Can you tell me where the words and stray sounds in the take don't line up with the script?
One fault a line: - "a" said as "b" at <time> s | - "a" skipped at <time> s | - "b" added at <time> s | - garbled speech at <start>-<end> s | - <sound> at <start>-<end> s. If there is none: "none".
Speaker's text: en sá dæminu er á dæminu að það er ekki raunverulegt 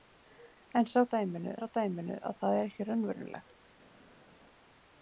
none